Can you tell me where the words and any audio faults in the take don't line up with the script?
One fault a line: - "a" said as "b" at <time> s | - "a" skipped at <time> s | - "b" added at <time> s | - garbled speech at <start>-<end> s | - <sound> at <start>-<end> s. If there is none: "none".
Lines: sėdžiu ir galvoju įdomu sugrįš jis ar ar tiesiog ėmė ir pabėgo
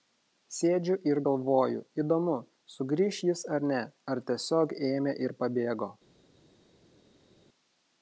- "ne" added at 3.7 s